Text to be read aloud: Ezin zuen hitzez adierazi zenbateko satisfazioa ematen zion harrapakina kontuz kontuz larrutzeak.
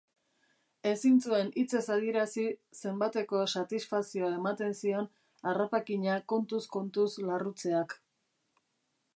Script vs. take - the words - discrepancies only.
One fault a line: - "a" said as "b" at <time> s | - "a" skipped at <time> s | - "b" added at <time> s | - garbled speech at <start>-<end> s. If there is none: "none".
none